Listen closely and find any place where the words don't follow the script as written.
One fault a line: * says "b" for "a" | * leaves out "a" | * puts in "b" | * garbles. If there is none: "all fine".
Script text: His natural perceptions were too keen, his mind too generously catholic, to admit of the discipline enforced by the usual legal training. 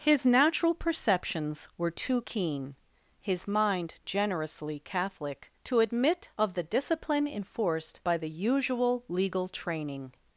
* leaves out "too"